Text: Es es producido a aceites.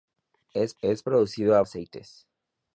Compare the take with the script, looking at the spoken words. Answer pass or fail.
pass